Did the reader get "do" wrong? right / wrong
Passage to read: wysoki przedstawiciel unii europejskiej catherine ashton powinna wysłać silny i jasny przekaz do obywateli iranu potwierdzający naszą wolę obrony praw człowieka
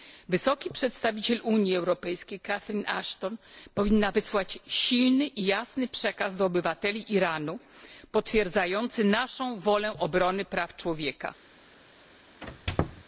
right